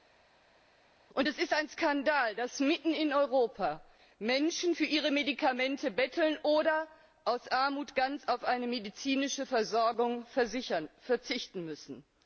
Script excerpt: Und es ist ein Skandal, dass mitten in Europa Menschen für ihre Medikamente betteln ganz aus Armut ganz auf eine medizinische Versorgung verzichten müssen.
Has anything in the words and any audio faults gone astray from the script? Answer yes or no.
yes